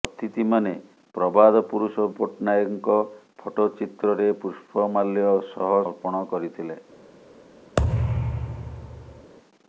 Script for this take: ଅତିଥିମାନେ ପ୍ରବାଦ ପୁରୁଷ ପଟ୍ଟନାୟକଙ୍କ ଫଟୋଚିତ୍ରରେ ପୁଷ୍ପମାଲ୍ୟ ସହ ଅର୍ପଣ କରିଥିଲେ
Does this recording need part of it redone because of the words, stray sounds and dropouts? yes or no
yes